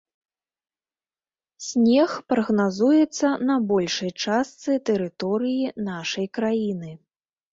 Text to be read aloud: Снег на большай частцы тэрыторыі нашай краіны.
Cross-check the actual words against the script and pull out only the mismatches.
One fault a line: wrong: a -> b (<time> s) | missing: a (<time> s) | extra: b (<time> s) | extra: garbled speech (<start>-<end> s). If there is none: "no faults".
extra: прагназуецца (2.3 s)